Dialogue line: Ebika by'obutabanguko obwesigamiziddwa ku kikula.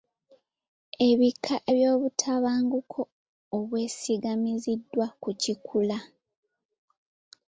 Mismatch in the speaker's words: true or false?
false